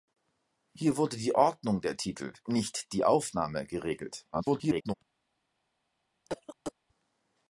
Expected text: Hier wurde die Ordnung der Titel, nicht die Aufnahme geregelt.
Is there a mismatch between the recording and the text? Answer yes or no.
yes